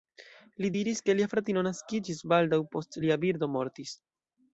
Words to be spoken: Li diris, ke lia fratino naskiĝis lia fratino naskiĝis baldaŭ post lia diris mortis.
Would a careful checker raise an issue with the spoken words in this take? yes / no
yes